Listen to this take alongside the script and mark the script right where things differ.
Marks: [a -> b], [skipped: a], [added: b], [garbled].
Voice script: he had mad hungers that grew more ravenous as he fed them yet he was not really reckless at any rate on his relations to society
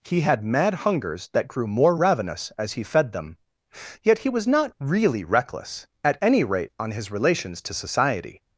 he had mad hungers that grew more ravenous as he fed them yet he was not really reckless at any rate on his relations to society